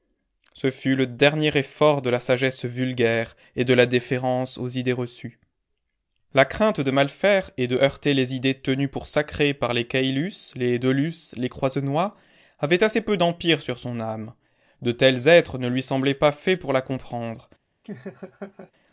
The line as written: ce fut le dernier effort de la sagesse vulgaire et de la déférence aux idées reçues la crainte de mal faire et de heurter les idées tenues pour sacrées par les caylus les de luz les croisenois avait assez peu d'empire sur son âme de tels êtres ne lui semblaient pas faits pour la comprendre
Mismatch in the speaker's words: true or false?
false